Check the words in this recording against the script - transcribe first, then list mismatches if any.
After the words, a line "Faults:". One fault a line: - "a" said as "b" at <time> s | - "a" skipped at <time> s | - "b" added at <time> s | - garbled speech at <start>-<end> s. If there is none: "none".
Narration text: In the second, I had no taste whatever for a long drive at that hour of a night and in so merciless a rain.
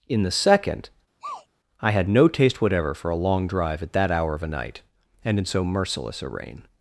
In the second, I had no taste whatever for a long drive at that hour of a night and in so merciless a rain.
Faults:
none